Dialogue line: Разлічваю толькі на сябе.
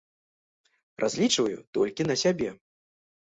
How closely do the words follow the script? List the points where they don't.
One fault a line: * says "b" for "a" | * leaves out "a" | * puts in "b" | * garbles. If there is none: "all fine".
all fine